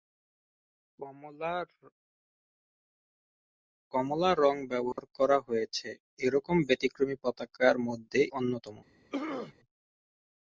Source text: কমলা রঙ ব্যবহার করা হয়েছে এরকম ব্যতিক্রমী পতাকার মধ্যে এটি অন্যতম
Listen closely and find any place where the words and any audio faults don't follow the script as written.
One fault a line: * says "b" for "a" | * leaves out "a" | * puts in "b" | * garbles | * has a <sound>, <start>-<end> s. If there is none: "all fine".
* has a dropout, 4.9-5.0 s
* leaves out "এটি"
* has a throat clearing, 9.1-9.5 s